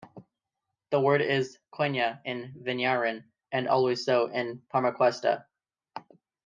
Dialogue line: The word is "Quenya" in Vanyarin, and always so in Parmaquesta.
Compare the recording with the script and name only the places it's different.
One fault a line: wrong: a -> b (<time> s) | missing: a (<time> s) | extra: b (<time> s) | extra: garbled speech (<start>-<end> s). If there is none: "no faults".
no faults